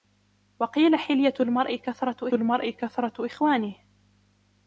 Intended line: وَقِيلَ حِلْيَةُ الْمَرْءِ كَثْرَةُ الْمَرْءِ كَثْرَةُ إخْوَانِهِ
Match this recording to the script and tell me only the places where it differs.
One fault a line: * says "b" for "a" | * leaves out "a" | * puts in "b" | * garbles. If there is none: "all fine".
all fine